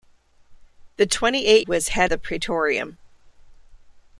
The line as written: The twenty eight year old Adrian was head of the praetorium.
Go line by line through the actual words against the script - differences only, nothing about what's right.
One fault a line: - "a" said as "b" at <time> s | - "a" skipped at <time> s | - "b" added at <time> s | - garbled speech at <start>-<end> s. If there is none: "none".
- "year old Adrian" skipped at 1.6 s
- "of" skipped at 2.1 s